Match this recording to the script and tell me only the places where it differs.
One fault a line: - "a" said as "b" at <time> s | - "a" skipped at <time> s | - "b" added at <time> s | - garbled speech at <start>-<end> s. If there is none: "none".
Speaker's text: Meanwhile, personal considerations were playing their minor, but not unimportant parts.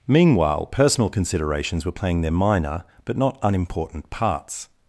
none